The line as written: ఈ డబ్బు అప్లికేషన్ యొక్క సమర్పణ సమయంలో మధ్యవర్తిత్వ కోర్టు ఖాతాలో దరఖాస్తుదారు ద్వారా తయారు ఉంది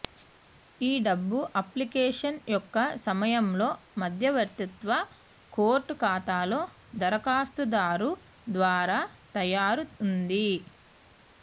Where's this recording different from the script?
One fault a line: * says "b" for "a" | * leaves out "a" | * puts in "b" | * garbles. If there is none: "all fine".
* leaves out "సమర్పణ"